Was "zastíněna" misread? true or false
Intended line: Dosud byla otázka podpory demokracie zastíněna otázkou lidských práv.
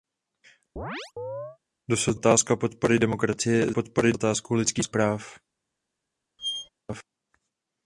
true